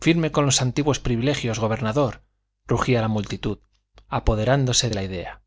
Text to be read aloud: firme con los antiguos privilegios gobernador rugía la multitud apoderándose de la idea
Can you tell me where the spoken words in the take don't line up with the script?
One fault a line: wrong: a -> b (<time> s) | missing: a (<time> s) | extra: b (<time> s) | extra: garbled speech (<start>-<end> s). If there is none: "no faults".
no faults